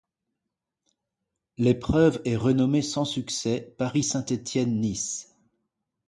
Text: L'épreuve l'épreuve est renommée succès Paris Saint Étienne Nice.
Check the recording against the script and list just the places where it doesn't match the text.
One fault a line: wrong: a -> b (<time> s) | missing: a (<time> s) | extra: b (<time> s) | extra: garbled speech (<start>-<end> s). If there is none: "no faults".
missing: l'épreuve (2.2 s)
extra: sans (2.8 s)